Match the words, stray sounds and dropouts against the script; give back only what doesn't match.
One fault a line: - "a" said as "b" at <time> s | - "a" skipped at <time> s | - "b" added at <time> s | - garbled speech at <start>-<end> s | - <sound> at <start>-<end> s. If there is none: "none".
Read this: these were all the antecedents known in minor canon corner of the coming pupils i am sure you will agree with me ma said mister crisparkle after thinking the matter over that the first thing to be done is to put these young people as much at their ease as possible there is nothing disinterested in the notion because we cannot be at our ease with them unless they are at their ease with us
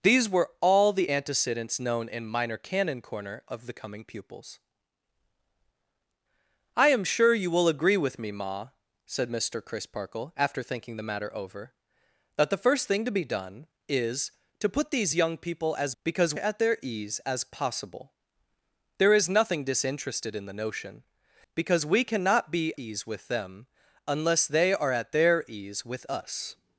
- "much" said as "because" at 16.0 s
- "at our" skipped at 22.7 s